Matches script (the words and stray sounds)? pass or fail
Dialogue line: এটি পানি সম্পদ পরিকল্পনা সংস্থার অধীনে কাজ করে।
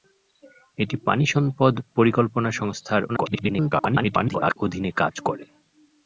fail